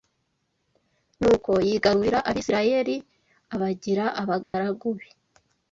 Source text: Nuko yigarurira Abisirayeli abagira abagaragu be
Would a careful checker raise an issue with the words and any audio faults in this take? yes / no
yes